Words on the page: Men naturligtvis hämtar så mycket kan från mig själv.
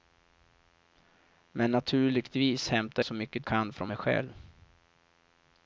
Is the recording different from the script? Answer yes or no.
no